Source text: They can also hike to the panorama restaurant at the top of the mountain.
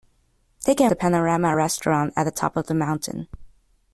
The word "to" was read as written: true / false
false